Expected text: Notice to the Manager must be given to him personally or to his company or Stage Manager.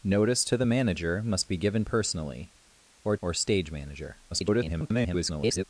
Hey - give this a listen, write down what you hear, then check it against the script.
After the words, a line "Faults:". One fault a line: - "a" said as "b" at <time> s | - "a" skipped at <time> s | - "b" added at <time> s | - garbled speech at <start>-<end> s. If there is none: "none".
Notice to the Manager must be given personally or or Stage Manager. [garbled]
Faults:
- "to him" skipped at 1.8 s
- "to his company" skipped at 3.2 s
- garbled speech at 4.3-5.6 s